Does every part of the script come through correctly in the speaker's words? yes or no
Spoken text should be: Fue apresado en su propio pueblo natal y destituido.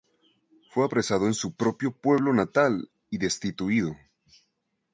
yes